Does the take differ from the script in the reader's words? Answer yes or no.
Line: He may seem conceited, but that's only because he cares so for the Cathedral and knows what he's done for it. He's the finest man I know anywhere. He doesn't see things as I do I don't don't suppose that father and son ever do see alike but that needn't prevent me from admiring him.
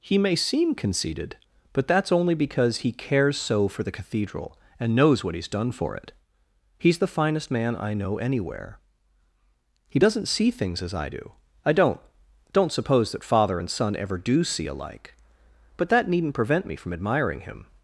no